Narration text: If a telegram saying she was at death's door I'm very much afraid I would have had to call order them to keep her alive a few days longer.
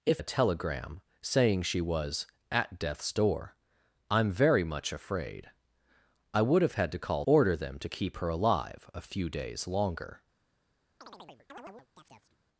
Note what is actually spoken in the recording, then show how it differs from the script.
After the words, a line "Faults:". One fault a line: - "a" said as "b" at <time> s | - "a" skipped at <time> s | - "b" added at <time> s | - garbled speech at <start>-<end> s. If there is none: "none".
If a telegram saying she was at death's door I'm very much afraid I would have had to call order them to keep her alive a few days longer.
Faults:
none